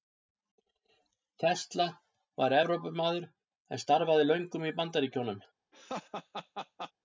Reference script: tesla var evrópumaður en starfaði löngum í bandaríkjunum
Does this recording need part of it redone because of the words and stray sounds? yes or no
yes